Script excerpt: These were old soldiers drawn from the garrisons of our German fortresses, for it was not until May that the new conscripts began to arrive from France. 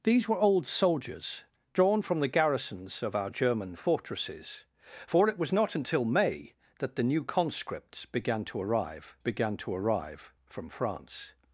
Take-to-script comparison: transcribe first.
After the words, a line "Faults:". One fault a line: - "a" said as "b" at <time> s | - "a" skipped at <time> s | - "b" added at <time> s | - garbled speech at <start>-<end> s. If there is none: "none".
These were old soldiers drawn from the garrisons of our German fortresses, for it was not until May that the new conscripts began to arrive began to arrive from France.
Faults:
- "began to arrive" added at 9.2 s